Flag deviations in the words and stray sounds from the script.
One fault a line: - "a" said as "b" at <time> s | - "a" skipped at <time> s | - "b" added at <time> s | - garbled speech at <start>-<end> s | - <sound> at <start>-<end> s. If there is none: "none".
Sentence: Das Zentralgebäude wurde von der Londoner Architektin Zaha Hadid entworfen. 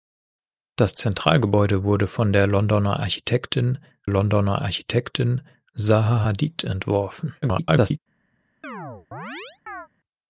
- "Londoner Architektin" added at 4.1 s
- garbled speech at 7.4-8.0 s
- chirp at 8.6-9.9 s